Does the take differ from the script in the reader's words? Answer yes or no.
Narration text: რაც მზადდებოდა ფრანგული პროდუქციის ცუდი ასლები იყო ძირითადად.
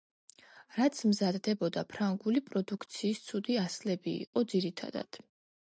no